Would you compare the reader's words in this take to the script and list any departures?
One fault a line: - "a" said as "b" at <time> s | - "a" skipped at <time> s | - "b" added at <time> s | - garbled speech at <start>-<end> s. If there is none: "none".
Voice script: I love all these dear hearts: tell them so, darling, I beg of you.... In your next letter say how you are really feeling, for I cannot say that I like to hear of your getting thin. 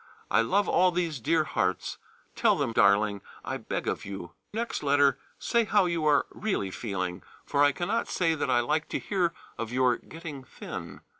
- "so" skipped at 2.7 s
- "In your" skipped at 4.3 s